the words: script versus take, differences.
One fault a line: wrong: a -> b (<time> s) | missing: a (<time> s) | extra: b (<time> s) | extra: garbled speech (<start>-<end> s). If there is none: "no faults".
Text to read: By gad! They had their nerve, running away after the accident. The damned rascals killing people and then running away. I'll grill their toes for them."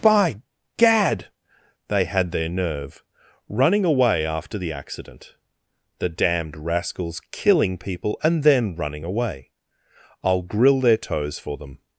no faults